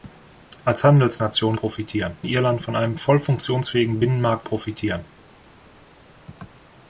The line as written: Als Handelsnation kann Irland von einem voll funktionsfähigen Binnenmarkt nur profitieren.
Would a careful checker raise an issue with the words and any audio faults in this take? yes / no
yes